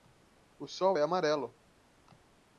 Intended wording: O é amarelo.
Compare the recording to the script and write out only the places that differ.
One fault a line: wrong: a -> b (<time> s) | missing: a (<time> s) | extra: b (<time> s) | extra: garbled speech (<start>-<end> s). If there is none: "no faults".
extra: sol (0.7 s)